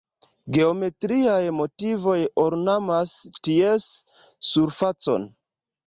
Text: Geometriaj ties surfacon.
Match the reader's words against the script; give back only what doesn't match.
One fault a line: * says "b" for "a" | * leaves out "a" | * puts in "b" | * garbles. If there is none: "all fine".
* puts in "motivoj ornamas"